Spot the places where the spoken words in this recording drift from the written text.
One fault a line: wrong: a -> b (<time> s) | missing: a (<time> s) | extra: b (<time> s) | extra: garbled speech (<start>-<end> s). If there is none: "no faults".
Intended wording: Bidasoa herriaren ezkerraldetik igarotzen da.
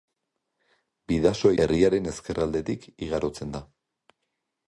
no faults